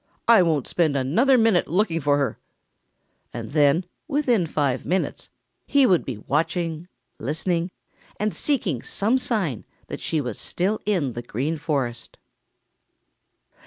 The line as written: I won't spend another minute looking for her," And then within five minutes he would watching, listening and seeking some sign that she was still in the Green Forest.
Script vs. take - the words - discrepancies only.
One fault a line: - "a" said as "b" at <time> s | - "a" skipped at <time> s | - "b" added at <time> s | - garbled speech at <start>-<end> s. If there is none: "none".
- "be" added at 6.0 s